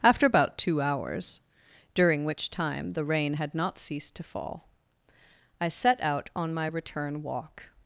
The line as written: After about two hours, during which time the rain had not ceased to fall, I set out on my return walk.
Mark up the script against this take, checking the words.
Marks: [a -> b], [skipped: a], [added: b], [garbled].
After about two hours, during which time the rain had not ceased to fall, I set out on my return walk.